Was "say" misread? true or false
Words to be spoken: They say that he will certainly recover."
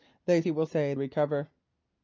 true